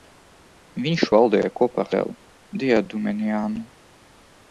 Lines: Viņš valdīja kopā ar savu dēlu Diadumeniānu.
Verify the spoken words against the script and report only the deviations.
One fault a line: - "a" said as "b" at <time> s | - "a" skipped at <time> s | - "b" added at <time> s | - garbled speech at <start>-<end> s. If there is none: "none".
- "savu" skipped at 1.9 s